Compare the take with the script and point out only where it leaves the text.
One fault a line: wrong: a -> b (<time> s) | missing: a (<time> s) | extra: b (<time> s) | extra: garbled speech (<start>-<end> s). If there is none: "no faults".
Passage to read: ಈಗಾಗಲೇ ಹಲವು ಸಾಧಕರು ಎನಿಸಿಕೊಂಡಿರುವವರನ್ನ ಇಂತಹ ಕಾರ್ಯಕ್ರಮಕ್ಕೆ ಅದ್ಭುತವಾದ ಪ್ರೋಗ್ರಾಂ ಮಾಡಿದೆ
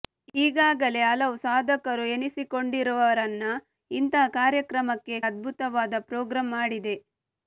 no faults